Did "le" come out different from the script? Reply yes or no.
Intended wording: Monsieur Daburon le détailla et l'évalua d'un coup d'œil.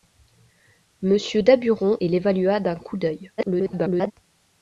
yes